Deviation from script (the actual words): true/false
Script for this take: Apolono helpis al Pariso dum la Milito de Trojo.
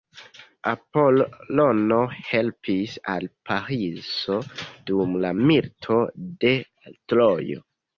false